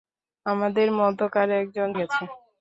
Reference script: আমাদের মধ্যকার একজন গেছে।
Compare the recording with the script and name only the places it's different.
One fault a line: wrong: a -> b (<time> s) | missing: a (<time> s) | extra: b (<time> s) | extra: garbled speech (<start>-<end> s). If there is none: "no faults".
no faults